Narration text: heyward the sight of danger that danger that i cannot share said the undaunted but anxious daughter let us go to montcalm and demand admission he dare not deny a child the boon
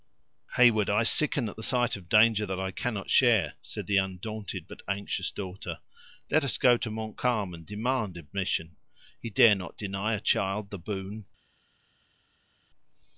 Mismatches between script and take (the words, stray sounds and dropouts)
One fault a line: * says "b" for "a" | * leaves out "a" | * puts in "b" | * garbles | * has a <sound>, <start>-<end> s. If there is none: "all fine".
* puts in "i sicken at"
* leaves out "danger that"